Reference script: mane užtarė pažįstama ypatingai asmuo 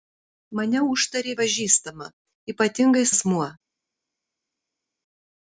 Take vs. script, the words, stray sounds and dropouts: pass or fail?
pass